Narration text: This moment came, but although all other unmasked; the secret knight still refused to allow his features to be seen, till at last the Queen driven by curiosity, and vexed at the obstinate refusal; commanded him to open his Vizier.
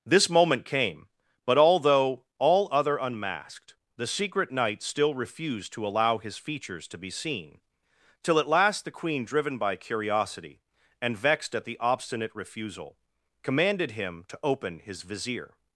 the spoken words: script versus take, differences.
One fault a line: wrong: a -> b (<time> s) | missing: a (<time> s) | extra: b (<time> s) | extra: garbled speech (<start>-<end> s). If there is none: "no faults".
no faults